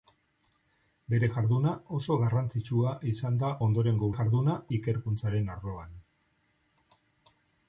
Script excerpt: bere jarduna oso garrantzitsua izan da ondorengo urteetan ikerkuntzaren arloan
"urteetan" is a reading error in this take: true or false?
true